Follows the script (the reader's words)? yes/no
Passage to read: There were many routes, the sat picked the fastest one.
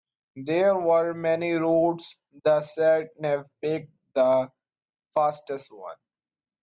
no